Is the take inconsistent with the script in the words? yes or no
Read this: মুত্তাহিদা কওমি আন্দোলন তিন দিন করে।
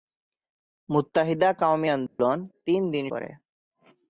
no